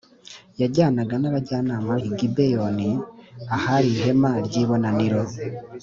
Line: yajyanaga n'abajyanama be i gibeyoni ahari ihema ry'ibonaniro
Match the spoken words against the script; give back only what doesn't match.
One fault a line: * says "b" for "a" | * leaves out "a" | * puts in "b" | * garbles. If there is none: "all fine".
* leaves out "be"